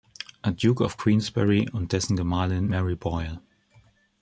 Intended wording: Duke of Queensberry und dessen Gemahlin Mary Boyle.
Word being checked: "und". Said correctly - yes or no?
yes